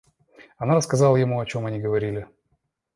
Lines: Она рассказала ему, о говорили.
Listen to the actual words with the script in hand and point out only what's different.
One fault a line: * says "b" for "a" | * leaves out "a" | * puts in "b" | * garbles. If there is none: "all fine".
* puts in "чем они"